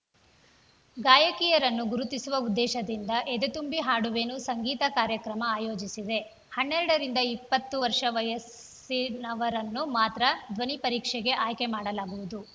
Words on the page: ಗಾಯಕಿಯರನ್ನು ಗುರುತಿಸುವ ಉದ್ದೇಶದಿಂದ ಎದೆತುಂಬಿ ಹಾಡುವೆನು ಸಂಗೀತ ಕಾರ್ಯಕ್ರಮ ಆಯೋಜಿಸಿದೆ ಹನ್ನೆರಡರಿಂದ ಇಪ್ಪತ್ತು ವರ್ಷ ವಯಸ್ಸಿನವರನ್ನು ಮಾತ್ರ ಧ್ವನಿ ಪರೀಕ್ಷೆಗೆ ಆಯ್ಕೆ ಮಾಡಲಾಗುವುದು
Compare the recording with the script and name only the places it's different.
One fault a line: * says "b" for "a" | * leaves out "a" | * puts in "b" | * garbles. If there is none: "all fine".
all fine